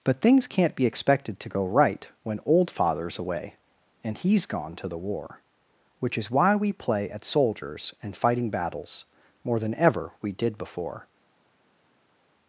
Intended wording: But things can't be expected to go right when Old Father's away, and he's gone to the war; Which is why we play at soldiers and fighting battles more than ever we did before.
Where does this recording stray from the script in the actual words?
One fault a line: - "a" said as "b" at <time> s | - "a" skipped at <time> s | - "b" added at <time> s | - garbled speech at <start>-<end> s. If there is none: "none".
none